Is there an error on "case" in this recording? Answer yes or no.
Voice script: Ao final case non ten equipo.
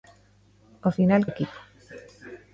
yes